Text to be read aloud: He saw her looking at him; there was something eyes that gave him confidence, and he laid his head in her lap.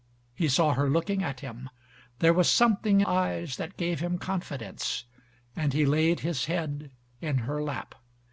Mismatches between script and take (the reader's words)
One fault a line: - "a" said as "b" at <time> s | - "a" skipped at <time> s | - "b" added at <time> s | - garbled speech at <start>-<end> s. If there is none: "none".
none